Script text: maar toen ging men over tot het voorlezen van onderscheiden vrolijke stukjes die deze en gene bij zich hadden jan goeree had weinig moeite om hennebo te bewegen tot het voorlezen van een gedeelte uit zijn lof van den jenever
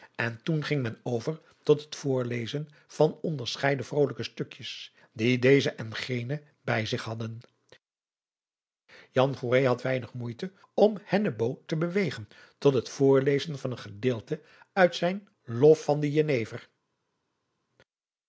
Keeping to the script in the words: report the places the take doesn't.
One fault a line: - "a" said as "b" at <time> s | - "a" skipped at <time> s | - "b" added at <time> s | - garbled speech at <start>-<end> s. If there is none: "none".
- "maar" said as "en" at 0.1 s